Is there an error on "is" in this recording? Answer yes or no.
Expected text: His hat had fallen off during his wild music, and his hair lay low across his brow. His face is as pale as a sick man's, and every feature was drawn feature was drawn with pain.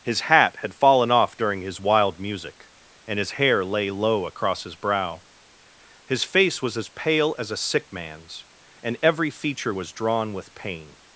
yes